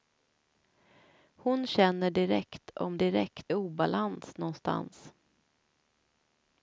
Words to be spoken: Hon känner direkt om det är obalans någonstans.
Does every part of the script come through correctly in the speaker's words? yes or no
no